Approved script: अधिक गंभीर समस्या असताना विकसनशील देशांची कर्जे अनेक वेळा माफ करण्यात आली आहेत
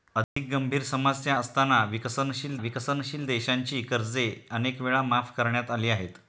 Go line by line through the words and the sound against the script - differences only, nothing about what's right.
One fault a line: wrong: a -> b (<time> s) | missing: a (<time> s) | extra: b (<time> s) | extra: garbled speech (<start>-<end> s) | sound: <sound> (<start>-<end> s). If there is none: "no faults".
sound: dropout (0.2-0.4 s)
extra: विकसनशील (2.6 s)